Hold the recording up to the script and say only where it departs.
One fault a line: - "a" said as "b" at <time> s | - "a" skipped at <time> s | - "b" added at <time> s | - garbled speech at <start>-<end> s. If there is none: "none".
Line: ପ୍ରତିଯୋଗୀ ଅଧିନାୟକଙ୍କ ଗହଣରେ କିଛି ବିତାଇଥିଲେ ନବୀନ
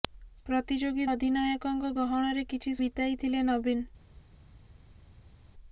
none